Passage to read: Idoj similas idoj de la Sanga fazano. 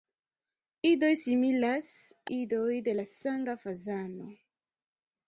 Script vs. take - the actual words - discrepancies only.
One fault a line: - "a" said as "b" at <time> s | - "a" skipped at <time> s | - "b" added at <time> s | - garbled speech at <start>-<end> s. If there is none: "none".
none